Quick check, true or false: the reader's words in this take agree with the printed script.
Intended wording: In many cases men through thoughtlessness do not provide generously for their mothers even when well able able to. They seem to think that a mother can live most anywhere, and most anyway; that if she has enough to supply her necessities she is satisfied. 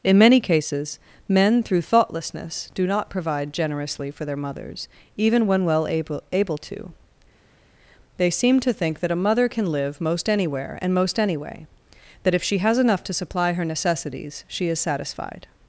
true